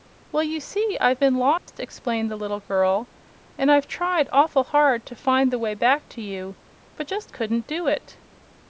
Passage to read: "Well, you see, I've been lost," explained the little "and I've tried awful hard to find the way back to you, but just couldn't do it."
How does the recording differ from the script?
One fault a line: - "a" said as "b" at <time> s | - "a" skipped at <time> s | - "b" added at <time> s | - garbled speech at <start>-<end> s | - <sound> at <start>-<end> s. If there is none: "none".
- dropout at 1.6-1.7 s
- "girl" added at 2.6 s